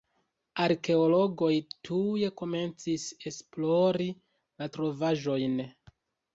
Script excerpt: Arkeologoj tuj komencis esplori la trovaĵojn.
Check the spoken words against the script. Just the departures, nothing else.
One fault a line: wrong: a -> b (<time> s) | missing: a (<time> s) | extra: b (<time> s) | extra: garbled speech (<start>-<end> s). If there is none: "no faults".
no faults